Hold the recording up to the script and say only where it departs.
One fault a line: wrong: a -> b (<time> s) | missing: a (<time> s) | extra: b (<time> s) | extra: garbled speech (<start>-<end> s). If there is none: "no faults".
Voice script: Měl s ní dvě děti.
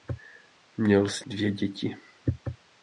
missing: ní (1.2 s)